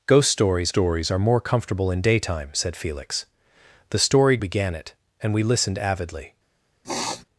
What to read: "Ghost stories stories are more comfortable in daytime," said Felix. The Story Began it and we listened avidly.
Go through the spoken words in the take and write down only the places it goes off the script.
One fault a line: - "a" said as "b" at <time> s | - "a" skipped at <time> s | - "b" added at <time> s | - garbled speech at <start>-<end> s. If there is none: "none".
none